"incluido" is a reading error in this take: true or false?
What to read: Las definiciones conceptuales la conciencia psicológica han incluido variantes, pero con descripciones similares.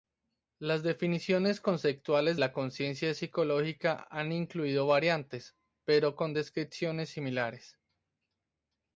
false